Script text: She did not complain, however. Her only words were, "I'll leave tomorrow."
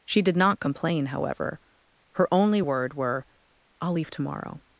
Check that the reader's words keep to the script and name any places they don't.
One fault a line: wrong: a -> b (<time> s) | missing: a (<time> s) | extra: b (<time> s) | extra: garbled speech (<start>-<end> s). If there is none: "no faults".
wrong: words -> word (2.6 s)